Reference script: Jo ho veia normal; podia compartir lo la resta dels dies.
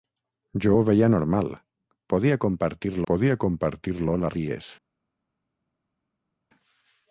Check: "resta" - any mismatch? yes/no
yes